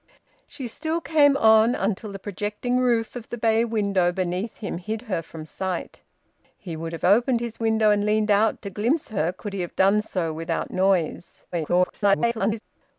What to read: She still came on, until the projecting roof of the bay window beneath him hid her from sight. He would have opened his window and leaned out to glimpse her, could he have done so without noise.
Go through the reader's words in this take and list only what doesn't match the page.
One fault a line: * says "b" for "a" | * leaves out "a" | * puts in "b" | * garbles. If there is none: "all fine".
* garbles